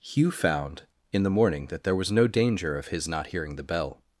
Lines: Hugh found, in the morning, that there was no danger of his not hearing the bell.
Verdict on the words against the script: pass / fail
pass